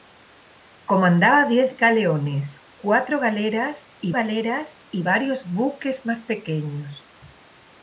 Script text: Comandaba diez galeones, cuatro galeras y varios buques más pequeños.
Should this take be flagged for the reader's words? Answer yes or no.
yes